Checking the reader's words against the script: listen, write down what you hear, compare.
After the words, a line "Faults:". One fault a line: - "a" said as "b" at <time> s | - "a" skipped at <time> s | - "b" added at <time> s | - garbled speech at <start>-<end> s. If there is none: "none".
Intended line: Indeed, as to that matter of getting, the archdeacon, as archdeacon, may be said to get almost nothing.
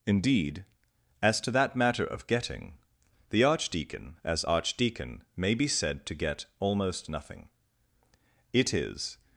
Indeed, as to that matter of getting, the archdeacon, as archdeacon, may be said to get almost nothing. It is
Faults:
- "It is" added at 8.5 s